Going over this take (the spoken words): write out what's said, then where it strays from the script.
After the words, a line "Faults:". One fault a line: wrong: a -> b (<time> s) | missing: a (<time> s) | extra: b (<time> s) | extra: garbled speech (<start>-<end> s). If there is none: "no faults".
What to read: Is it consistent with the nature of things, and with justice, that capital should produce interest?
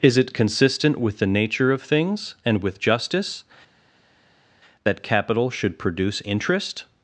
Is it consistent with the nature of things, and with justice, that capital should produce interest?
Faults:
no faults